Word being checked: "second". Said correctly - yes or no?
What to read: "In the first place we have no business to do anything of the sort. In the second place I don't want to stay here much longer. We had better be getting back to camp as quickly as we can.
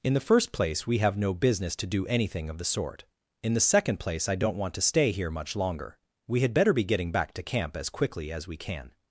yes